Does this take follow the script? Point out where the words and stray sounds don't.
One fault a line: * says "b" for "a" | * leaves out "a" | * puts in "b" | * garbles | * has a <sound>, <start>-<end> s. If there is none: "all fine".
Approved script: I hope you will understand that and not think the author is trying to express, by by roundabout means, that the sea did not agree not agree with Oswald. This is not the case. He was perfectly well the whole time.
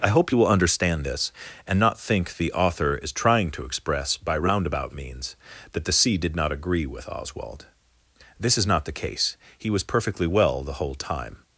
* says "this" for "that"
* leaves out "by"
* leaves out "not agree"